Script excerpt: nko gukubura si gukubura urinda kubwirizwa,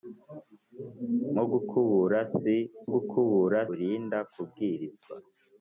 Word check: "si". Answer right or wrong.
right